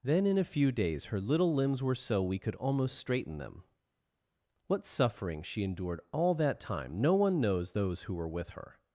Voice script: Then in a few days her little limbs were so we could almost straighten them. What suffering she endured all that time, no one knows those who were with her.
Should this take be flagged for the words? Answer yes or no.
no